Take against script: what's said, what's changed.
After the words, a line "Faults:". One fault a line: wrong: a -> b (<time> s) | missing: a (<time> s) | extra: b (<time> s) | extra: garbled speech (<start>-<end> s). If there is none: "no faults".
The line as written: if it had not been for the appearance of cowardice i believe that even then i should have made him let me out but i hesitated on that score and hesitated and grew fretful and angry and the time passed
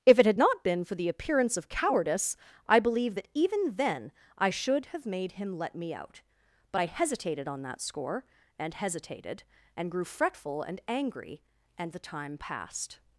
if it had not been for the appearance of cowardice i believe that even then i should have made him let me out but i hesitated on that score and hesitated and grew fretful and angry and the time passed
Faults:
no faults